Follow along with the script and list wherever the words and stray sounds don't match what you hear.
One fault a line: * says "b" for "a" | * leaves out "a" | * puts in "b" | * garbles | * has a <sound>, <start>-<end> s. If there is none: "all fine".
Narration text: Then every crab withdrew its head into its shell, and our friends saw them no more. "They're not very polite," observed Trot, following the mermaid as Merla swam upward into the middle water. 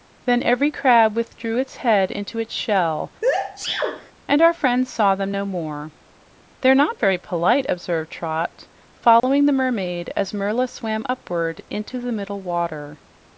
* has a sneeze, 3.2-4.1 s
* has a dropout, 9.2-9.2 s